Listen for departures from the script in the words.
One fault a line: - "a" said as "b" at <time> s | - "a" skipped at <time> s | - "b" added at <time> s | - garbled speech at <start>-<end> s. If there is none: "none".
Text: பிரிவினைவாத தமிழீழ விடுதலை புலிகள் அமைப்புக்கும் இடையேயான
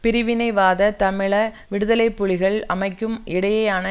none